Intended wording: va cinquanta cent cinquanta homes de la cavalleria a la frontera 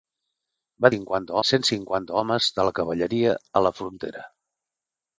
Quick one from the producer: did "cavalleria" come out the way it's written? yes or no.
yes